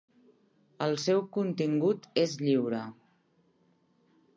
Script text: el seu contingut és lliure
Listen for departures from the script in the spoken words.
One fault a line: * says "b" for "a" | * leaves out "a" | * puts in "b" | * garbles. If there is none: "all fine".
all fine